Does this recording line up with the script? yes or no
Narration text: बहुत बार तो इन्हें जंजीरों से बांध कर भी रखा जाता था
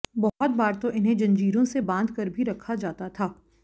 yes